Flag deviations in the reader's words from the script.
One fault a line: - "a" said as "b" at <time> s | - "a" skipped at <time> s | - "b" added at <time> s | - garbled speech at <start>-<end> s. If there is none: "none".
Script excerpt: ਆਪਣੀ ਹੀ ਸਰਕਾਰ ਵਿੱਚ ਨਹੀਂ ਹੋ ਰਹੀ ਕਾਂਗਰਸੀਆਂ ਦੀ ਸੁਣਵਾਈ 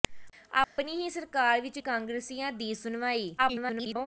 - "ਨਹੀਂ ਹੋ ਰਹੀ" skipped at 1.8 s
- garbled speech at 3.4-4.1 s